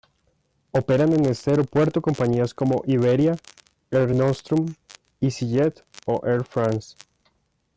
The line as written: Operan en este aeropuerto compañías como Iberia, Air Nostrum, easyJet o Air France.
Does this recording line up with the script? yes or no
yes